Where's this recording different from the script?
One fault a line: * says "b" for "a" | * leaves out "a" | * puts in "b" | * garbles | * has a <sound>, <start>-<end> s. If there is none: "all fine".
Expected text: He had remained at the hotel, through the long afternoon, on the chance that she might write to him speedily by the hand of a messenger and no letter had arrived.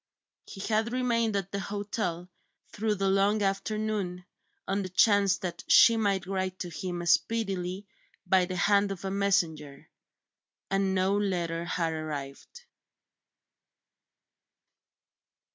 all fine